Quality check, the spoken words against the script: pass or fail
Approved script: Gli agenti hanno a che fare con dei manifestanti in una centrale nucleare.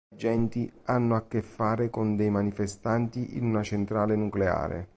pass